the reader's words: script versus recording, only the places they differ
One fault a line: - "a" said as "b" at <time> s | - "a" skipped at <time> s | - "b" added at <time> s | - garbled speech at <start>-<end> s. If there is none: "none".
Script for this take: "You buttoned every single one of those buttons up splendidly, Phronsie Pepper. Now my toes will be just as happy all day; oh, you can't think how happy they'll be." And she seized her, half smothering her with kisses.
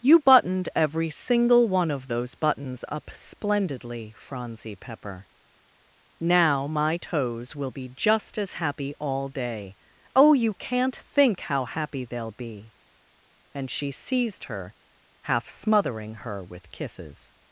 none